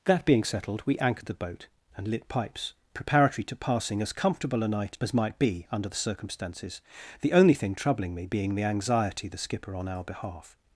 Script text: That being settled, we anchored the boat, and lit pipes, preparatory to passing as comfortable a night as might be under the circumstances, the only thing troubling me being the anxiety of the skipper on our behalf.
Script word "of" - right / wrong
wrong